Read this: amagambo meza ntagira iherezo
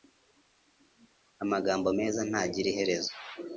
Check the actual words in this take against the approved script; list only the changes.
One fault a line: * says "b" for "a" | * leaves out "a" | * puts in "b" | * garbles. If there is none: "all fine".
all fine